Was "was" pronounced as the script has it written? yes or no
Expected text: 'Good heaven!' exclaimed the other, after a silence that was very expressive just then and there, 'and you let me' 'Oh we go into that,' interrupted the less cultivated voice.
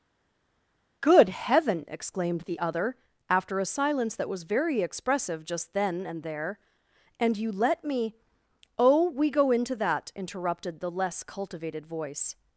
yes